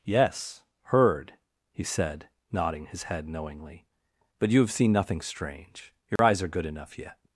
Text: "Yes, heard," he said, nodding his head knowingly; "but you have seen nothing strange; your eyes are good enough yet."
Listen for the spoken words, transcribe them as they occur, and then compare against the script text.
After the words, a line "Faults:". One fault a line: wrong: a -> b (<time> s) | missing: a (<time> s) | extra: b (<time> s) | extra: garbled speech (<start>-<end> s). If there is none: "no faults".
"Yes, heard," he said, nodding his head knowingly; "but you have seen nothing strange; your eyes are good enough yet."
Faults:
no faults